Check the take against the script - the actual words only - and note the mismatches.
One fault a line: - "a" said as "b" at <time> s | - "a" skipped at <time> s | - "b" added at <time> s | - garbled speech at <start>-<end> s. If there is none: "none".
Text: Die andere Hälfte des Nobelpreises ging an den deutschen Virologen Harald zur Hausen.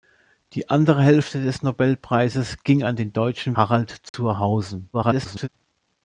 - "Virologen" skipped at 3.5 s
- garbled speech at 4.9-5.5 s